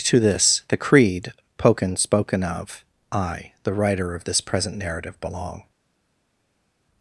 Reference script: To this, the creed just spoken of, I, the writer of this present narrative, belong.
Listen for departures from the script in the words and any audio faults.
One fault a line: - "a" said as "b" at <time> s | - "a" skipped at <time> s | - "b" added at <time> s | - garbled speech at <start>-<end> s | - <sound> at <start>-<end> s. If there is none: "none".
- "just" said as "poken" at 1.6 s